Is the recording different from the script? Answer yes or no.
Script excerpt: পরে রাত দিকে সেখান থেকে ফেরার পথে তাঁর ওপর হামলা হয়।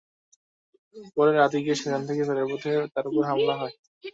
no